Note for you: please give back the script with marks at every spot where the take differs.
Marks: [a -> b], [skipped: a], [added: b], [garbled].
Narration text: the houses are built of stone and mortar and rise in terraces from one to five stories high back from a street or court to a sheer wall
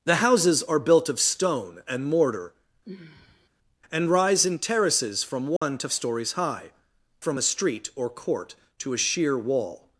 the houses are built of stone and mortar and rise in terraces from one to [skipped: five] stories high [skipped: back] from a street or court to a sheer wall